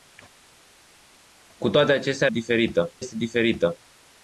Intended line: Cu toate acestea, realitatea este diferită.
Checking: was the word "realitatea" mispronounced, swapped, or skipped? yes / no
yes